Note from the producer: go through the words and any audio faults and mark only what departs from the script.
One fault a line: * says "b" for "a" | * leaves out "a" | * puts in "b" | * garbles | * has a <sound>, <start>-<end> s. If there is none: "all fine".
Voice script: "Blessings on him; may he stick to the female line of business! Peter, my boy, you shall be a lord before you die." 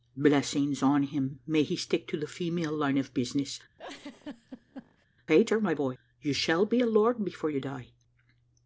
* has a laugh, 3.8-5.1 s